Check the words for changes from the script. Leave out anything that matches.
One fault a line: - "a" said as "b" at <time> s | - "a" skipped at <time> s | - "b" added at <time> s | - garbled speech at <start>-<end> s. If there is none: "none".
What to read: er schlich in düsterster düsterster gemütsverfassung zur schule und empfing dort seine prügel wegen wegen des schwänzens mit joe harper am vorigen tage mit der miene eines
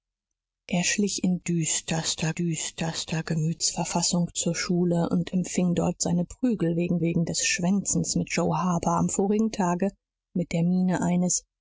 none